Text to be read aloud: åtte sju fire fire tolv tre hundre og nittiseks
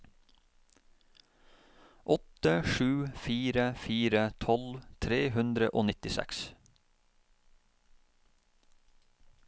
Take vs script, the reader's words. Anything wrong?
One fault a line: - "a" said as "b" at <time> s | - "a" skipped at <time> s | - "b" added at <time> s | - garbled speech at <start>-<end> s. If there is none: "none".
none